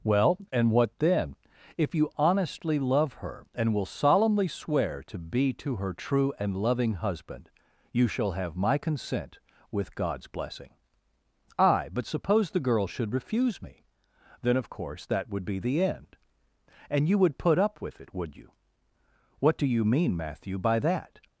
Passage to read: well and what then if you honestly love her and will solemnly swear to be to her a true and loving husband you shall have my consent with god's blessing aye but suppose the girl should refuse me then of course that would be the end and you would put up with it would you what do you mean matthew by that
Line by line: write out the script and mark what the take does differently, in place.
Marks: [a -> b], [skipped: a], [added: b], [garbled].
well and what then if you honestly love her and will solemnly swear to be to her [skipped: a] true and loving husband you shall have my consent with god's blessing aye but suppose the girl should refuse me then of course that would be the end and you would put up with it would you what do you mean matthew by that